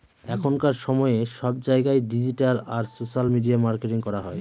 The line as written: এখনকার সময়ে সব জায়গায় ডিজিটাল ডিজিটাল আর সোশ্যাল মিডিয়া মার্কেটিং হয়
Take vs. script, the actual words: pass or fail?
fail